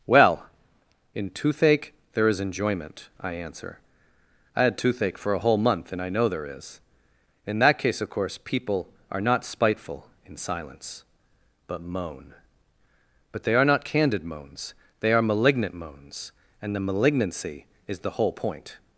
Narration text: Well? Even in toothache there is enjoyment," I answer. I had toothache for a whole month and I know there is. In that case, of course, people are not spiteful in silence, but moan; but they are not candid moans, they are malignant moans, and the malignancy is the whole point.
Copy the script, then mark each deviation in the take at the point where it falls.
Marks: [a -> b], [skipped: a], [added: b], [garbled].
Well? [skipped: Even] in toothache there is enjoyment," I answer. I had toothache for a whole month and I know there is. In that case, of course, people are not spiteful in silence, but moan; but they are not candid moans, they are malignant moans, and the malignancy is the whole point.